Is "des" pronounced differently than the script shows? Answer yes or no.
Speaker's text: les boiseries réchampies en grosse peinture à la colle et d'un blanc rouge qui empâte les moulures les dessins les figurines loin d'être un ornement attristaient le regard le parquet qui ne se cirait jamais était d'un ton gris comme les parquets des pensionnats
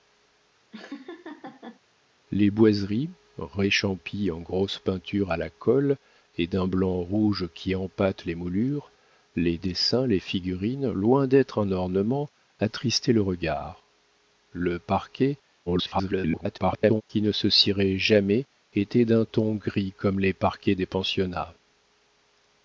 no